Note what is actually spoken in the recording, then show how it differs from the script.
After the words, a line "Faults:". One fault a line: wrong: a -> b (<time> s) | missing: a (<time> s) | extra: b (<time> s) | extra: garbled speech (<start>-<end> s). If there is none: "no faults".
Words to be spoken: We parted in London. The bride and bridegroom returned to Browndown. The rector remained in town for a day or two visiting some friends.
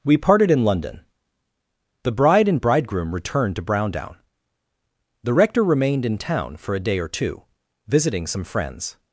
We parted in London. The bride and bridegroom returned to Browndown. The rector remained in town for a day or two visiting some friends.
Faults:
no faults